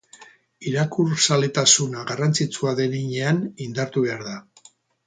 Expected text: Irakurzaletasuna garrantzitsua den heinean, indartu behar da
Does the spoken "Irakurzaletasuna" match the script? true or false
true